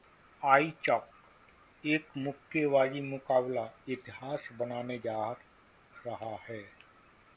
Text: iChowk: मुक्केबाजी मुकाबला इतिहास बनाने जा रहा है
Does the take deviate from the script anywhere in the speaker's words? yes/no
yes